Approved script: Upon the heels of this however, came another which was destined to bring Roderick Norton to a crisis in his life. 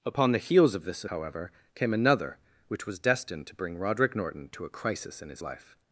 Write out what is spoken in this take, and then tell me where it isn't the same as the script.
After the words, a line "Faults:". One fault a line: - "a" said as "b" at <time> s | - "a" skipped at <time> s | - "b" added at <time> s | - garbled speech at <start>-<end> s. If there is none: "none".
Upon the heels of this however, came another which was destined to bring Roderick Norton to a crisis in his life.
Faults:
none